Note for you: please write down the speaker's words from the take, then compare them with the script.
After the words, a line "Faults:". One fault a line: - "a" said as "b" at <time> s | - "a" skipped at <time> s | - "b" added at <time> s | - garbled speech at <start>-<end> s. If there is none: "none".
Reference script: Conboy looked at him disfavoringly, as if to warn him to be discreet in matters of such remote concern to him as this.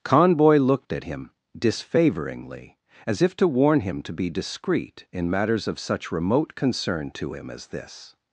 Conboy looked at him disfavoringly, as if to warn him to be discreet in matters of such remote concern to him as this.
Faults:
none